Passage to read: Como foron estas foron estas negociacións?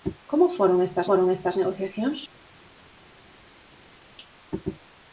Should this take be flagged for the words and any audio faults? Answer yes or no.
no